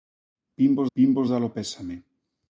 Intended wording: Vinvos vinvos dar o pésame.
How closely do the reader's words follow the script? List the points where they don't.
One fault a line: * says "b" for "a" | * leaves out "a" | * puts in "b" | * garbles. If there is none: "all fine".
all fine